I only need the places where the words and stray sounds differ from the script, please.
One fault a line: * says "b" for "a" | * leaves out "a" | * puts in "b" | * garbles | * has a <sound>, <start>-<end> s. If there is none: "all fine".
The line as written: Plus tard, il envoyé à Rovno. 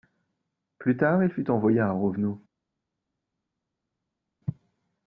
* puts in "fut"